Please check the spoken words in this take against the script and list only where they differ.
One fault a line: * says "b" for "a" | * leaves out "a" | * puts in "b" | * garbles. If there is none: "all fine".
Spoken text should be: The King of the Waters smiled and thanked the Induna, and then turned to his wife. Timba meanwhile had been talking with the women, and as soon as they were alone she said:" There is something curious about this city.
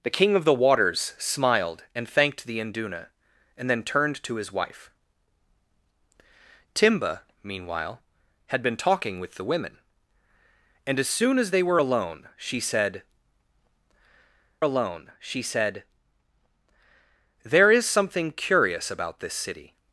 * puts in "alone she said"